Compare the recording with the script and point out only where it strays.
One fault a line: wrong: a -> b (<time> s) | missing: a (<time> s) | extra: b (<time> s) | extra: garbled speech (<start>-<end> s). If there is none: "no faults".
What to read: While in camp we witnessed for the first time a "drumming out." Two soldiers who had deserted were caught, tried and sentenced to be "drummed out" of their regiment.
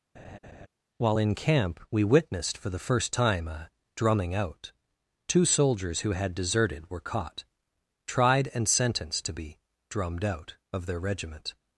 no faults